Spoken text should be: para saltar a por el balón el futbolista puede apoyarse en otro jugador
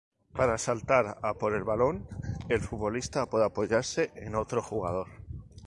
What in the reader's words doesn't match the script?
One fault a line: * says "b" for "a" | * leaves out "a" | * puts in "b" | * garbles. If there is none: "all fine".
all fine